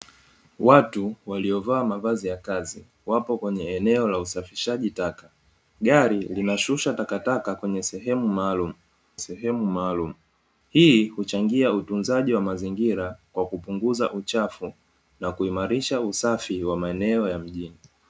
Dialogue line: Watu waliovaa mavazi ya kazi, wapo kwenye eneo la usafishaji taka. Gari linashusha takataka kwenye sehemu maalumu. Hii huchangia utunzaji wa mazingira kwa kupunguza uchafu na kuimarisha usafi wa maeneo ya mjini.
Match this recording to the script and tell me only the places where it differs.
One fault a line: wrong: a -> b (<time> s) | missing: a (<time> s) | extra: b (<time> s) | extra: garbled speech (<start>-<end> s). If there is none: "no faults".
extra: sehemu maalumu (9.2 s)